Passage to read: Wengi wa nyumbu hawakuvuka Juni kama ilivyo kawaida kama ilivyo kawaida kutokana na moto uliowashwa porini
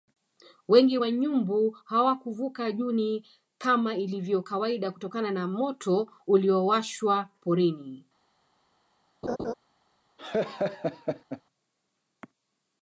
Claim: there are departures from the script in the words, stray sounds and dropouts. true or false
true